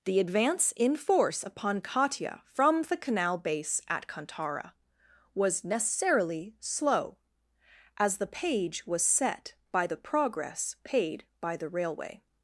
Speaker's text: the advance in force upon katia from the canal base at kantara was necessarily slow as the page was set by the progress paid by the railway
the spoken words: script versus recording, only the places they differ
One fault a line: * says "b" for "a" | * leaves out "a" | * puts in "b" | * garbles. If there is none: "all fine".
all fine